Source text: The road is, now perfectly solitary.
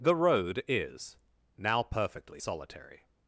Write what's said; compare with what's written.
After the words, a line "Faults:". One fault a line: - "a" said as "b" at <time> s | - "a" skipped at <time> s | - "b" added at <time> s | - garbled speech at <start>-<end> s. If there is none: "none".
The road is, now perfectly solitary.
Faults:
none